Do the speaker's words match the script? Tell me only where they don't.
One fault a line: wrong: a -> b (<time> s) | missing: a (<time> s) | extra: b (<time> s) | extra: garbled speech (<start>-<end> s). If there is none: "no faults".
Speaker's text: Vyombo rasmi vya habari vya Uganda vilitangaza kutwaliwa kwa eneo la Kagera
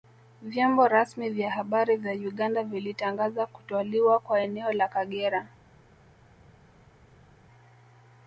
no faults